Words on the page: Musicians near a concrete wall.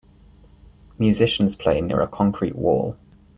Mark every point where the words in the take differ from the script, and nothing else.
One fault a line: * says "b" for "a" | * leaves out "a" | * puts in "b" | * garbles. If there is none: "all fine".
* puts in "play"